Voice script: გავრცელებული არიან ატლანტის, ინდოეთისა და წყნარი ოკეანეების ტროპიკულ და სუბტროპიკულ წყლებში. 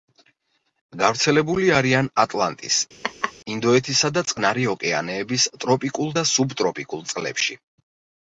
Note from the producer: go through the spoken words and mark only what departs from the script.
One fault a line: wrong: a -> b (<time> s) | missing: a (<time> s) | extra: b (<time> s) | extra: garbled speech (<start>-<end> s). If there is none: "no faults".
no faults